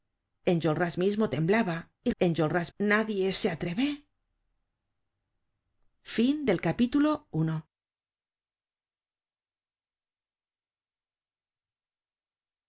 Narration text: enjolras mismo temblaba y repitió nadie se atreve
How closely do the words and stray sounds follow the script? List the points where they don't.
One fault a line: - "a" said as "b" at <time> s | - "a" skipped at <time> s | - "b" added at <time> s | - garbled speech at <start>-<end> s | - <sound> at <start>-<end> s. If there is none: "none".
- "repitió" said as "enjolras" at 2.2 s